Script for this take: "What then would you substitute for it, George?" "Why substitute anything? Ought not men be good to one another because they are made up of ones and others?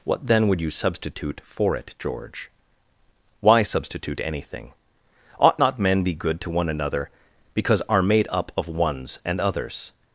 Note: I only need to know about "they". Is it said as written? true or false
false